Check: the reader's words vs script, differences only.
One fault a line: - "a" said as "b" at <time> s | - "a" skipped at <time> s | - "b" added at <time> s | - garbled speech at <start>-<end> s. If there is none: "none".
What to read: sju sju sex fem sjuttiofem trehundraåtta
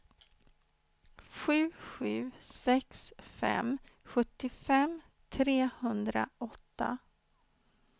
none